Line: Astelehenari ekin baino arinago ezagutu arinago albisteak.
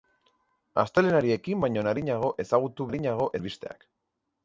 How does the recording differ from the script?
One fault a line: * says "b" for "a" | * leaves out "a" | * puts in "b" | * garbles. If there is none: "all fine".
all fine